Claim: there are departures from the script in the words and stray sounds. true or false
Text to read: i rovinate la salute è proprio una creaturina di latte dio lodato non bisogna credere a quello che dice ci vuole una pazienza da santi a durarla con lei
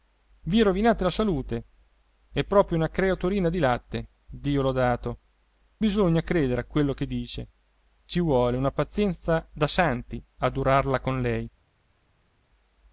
true